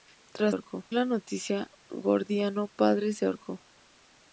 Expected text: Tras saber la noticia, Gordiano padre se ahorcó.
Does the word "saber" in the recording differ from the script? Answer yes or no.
yes